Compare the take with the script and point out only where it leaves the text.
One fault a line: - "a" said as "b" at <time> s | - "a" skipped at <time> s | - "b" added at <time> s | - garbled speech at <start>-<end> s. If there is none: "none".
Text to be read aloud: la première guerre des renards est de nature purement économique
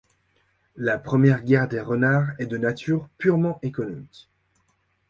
none